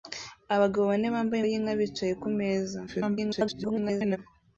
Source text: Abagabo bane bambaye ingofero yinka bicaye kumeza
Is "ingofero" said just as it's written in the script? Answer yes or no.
no